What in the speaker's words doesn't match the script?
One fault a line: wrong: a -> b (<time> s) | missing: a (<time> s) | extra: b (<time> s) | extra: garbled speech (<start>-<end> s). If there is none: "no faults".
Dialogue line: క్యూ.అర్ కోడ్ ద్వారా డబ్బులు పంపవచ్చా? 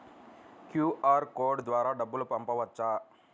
no faults